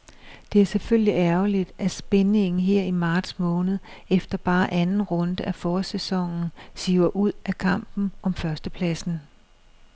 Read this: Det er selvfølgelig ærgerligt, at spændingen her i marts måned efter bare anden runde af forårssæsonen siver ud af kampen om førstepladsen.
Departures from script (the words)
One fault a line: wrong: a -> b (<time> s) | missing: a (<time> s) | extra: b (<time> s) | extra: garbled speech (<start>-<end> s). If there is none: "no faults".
no faults